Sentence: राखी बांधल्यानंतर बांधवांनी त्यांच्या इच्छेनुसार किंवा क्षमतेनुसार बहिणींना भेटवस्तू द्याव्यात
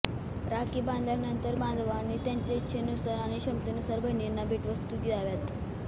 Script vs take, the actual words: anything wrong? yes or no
yes